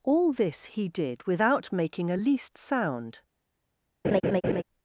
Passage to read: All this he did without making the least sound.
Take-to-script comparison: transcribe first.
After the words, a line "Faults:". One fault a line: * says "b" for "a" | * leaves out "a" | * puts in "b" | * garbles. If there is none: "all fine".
All this he did without making a least sound.
Faults:
* says "a" for "the"